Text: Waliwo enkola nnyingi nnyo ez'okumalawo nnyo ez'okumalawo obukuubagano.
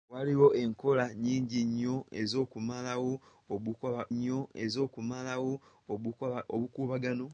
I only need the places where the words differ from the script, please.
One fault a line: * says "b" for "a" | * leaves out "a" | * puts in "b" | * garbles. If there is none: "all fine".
all fine